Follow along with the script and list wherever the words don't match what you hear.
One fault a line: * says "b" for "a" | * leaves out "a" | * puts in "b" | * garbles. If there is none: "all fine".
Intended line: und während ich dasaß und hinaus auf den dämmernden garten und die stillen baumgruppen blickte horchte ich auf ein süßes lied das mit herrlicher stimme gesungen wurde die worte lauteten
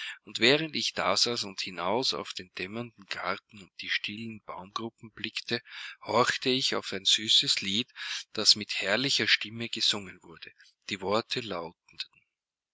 all fine